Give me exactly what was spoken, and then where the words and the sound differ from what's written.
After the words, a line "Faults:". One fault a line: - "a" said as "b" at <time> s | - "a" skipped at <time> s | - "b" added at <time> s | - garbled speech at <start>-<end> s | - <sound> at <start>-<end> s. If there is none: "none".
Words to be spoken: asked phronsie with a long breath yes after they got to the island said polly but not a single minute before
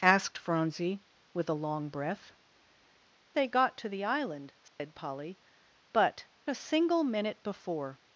asked phronsie with a long breath they got to the island said polly but a single minute before
Faults:
- "yes after" skipped at 2.3 s
- dropout at 4.7-4.8 s
- "not" skipped at 6.3 s